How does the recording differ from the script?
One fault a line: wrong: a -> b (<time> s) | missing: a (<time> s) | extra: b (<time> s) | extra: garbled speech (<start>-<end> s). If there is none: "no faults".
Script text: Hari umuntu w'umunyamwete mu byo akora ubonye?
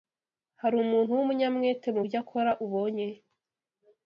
no faults